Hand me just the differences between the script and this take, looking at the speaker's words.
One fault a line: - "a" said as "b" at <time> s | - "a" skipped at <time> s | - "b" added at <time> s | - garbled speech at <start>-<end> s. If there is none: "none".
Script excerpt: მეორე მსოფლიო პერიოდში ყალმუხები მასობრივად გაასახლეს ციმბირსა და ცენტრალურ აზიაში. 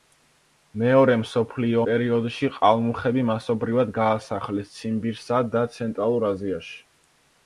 none